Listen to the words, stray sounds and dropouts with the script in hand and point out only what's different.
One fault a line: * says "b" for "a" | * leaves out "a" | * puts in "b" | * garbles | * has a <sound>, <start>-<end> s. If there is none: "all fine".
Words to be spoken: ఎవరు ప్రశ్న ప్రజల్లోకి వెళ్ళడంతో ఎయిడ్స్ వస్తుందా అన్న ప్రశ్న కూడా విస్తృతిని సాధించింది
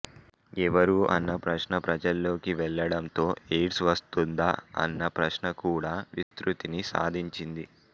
* puts in "అన్న"
* has a dropout, 6.2-6.3 s